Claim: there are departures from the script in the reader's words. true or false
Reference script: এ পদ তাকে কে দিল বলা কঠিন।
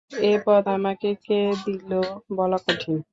true